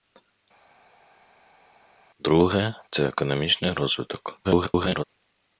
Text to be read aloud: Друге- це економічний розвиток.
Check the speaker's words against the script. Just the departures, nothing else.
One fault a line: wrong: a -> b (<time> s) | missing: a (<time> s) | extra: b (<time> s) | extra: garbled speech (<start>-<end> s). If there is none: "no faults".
extra: garbled speech (4.4-5.0 s)